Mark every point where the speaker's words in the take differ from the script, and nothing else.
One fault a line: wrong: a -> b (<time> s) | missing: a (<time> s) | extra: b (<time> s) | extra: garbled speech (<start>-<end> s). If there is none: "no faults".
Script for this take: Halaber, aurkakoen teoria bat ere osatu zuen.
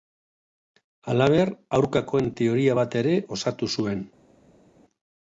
no faults